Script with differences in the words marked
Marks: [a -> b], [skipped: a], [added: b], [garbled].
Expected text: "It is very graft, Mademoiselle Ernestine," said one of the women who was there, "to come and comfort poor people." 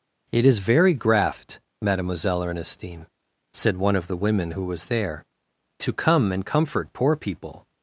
"It is very graft, Mademoiselle Ernestine," said one of the women who was there, "to come and comfort poor people."